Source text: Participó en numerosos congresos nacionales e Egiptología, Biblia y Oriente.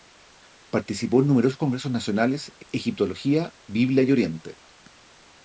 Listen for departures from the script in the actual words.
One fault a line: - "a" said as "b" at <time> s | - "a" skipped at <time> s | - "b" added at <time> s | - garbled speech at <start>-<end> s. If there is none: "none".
none